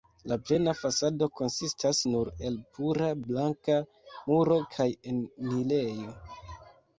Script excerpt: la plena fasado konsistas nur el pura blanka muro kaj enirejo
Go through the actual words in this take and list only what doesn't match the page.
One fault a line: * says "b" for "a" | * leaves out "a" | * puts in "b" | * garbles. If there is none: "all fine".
all fine